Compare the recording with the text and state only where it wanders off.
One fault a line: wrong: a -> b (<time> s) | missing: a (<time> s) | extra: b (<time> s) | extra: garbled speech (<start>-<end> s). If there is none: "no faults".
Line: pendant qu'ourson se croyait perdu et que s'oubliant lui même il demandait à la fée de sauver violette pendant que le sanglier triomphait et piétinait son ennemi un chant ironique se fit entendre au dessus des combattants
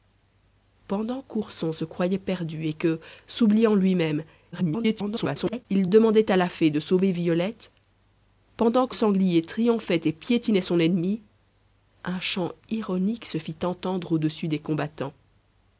extra: garbled speech (4.5-5.7 s)
missing: le (9.0 s)